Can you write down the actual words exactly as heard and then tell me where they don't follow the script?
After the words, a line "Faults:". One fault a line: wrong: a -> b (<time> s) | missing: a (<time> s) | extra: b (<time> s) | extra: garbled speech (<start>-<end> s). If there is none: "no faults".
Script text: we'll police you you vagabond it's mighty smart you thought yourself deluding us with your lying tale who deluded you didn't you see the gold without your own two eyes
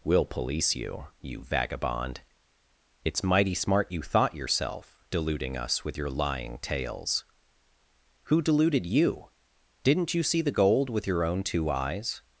we'll police you you vagabond it's mighty smart you thought yourself deluding us with your lying tales who deluded you didn't you see the gold with your own two eyes
Faults:
wrong: tale -> tales (6.6 s)
wrong: without -> with (10.9 s)